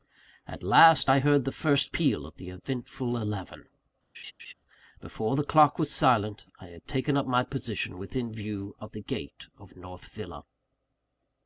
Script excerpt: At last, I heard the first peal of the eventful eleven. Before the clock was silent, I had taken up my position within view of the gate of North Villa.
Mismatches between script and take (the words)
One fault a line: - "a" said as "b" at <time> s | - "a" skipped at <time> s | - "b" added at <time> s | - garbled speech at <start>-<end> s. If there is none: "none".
none